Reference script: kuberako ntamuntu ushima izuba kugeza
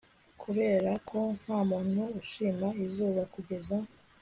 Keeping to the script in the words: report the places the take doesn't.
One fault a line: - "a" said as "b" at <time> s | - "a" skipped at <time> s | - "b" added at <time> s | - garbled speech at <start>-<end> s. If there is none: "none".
none